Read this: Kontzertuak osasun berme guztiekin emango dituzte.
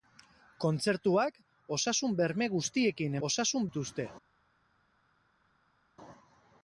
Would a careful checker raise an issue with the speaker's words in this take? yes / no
yes